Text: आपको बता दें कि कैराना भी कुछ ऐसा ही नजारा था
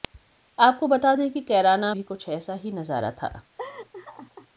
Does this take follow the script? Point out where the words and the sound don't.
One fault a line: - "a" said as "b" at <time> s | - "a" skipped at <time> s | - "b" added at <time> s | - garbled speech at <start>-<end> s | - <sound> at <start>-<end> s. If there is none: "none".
- laugh at 3.6-4.5 s